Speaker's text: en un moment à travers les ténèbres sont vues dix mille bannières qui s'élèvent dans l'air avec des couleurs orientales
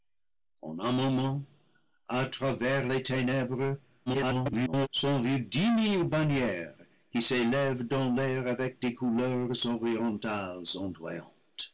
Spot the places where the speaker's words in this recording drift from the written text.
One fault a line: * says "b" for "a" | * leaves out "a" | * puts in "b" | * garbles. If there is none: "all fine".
* garbles